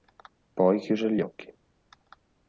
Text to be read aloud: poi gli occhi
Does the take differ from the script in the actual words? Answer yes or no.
yes